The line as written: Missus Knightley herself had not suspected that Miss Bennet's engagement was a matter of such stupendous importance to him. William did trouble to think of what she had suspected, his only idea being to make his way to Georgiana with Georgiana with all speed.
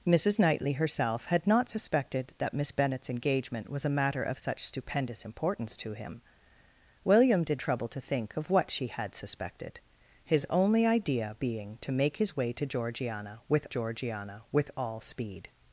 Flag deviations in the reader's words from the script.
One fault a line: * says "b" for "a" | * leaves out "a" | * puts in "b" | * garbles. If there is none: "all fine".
all fine